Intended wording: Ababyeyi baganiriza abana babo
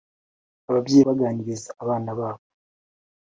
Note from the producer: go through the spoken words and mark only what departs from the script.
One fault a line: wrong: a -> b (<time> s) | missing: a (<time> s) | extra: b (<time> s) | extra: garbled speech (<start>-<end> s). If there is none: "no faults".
no faults